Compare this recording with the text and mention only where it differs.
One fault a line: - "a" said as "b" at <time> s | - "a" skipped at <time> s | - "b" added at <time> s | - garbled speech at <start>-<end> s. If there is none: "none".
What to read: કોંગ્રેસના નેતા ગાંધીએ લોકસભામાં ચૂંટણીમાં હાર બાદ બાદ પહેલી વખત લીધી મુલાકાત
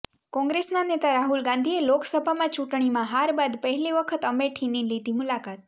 - "રાહુલ" added at 1.1 s
- "બાદ" skipped at 3.6 s
- "અમેઠીની" added at 4.3 s